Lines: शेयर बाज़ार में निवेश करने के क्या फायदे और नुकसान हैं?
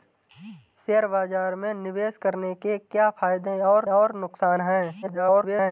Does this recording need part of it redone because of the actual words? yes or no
yes